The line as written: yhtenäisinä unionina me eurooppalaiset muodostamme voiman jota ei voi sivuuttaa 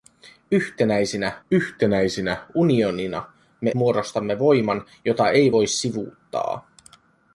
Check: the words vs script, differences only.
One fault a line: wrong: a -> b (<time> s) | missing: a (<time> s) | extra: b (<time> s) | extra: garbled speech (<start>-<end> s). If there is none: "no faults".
extra: yhtenäisinä (1.5 s)
missing: eurooppalaiset (3.7 s)